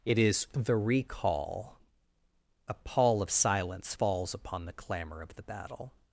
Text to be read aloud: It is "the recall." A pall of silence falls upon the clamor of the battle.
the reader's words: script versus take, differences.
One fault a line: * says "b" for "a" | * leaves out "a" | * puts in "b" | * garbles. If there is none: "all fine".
all fine